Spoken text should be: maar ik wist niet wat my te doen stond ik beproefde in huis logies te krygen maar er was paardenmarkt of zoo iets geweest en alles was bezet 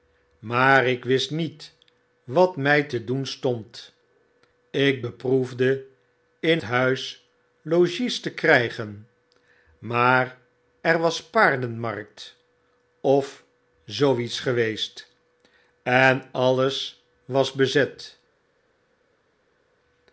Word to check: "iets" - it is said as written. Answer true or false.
true